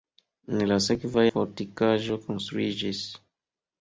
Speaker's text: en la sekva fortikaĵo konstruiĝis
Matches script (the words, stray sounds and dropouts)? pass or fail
pass